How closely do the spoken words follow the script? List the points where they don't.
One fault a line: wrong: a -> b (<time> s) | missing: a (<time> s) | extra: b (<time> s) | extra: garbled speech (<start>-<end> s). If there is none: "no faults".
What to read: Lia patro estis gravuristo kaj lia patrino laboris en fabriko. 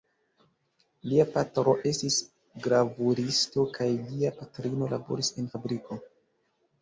no faults